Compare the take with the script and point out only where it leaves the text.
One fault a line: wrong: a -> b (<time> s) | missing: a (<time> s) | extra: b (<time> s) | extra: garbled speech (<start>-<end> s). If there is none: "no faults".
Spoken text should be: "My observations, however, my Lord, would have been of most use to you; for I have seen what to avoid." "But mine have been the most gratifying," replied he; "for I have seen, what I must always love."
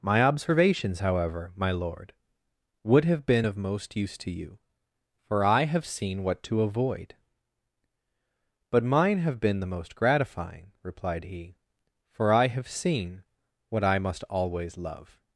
no faults